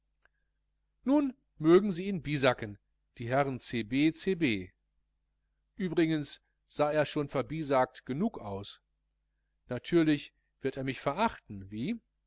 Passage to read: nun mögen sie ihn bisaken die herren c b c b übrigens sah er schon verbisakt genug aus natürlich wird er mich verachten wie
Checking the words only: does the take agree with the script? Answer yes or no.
yes